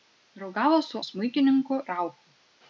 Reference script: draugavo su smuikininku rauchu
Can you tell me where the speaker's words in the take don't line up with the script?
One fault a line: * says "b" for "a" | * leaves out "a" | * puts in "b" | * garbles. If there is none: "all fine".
all fine